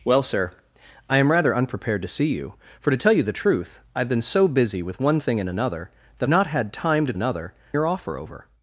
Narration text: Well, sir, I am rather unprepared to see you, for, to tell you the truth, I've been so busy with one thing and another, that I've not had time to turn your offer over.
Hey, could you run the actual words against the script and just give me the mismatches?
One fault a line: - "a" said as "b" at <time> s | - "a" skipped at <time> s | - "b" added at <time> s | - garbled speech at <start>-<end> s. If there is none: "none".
- "I've" skipped at 6.3 s
- "turn" said as "another" at 7.1 s